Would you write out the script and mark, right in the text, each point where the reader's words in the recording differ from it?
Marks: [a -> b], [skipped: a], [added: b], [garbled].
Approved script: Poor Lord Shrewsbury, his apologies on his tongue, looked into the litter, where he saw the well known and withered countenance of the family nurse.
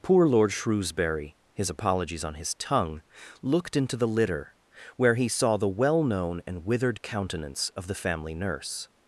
Poor Lord Shrewsbury, his apologies on his tongue, looked into the litter, where he saw the well known and withered countenance of the family nurse.